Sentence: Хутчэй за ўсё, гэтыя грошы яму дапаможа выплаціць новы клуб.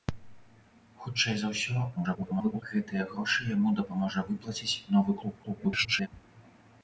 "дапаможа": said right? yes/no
yes